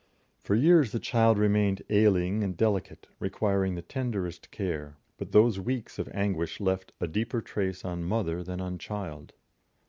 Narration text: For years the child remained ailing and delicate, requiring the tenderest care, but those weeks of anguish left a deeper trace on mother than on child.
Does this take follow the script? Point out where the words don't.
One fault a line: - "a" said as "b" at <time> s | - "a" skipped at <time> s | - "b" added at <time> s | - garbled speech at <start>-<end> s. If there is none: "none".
none